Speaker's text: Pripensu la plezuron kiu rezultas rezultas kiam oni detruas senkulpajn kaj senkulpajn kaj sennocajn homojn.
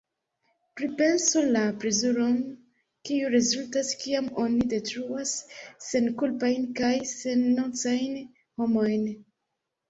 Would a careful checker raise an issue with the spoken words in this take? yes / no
yes